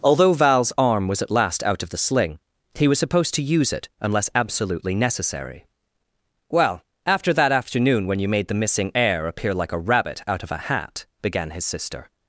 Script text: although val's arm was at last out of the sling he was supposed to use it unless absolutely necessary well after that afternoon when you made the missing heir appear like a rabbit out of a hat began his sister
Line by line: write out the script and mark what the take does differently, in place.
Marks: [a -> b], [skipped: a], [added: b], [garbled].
although val's arm was at last out of the sling he was supposed to use it unless absolutely necessary well after that afternoon when you made the missing heir appear like a rabbit out of a hat began his sister